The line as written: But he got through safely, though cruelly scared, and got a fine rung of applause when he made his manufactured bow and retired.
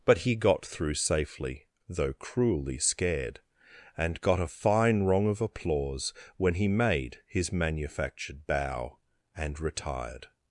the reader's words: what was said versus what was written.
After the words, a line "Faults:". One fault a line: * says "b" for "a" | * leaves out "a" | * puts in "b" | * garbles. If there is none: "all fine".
But he got through safely, though cruelly scared, and got a fine rung of applause when he made his manufactured bow and retired.
Faults:
all fine